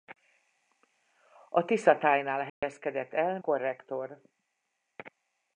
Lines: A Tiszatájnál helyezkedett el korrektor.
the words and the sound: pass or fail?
fail